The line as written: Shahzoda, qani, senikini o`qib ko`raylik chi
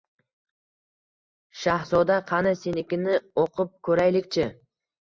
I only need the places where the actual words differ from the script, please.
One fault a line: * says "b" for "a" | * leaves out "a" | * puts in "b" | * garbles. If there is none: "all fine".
all fine